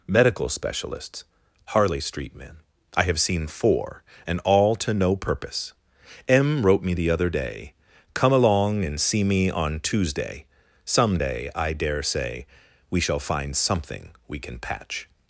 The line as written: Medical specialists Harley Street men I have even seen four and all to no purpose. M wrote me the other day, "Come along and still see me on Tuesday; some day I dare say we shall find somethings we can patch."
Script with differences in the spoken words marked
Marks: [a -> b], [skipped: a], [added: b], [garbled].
Medical specialists Harley Street men I have [skipped: even] seen four and all to no purpose. M wrote me the other day, "Come along and [skipped: still] see me on Tuesday; some day I dare say we shall find [somethings -> something] we can patch."